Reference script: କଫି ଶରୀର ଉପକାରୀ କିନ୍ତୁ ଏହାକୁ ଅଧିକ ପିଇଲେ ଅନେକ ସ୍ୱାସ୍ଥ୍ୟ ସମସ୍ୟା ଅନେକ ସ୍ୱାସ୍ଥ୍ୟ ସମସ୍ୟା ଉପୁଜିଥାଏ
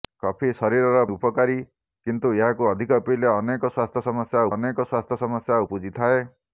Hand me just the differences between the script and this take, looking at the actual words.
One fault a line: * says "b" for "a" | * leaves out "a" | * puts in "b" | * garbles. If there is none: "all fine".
all fine